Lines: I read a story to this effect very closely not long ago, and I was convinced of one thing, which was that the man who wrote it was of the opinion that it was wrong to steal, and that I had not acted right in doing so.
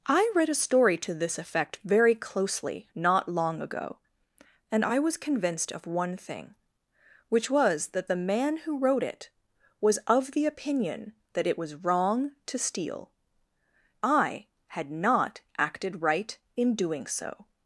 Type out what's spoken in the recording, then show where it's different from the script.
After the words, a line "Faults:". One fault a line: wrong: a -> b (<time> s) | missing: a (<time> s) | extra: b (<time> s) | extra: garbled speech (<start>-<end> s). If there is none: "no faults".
I read a story to this effect very closely not long ago, and I was convinced of one thing, which was that the man who wrote it was of the opinion that it was wrong to steal, I had not acted right in doing so.
Faults:
missing: and that (13.1 s)